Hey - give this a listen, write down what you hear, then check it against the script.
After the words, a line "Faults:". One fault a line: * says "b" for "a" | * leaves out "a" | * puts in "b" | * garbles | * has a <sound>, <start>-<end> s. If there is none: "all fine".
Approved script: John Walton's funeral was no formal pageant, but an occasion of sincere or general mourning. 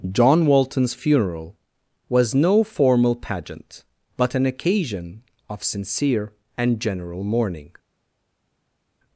John Walton's funeral was no formal pageant, but an occasion of sincere and general mourning.
Faults:
* says "and" for "or"